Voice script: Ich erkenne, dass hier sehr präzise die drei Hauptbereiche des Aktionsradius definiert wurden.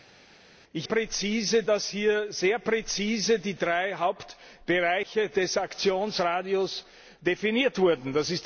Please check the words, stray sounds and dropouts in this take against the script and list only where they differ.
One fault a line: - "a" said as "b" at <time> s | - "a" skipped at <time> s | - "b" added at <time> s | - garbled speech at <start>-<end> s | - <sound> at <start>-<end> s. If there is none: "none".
- "erkenne" said as "präzise" at 0.8 s